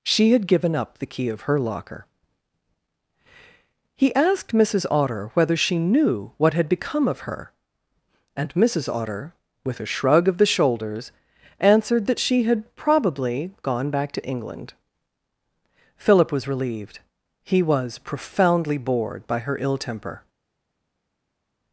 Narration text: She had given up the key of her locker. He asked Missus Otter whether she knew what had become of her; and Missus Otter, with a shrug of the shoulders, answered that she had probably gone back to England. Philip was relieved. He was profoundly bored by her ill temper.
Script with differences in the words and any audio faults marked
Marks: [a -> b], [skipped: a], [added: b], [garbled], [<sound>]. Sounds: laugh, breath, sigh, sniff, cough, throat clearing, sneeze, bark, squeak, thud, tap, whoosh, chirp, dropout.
She had given up the key of her locker. He asked Missus Otter whether she knew what had become of her; and Missus Otter, with a shrug of the shoulders, answered that she had probably gone back to England. Philip was relieved. He was profoundly bored by her ill temper.